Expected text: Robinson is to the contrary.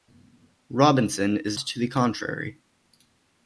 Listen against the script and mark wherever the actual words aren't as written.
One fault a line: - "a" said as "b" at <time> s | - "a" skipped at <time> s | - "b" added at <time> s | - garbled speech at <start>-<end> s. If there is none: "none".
none